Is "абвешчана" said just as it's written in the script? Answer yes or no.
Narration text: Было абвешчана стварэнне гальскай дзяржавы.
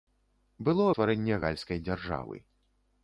no